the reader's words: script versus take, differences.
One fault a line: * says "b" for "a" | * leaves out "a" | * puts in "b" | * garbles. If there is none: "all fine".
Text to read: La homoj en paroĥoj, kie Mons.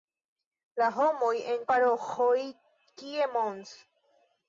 all fine